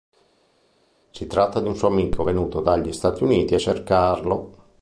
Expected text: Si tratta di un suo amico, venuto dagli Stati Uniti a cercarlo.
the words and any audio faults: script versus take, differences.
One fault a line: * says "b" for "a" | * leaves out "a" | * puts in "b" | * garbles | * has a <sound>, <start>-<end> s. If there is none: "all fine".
all fine